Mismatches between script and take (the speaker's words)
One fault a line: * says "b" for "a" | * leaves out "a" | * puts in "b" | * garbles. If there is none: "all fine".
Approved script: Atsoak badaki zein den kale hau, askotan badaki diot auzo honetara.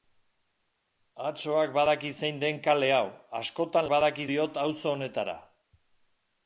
all fine